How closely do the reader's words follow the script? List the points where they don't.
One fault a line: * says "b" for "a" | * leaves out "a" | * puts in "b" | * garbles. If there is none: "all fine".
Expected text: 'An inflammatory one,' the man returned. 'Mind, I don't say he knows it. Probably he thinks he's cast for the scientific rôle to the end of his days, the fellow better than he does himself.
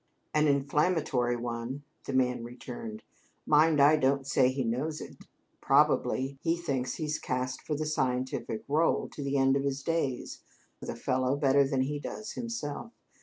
all fine